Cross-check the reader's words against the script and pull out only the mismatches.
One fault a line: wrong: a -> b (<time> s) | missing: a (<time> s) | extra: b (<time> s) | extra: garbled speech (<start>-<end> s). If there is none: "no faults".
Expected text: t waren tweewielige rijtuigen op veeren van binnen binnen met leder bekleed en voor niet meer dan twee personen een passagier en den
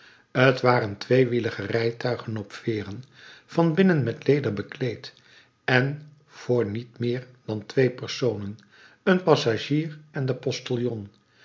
missing: binnen (4.0 s)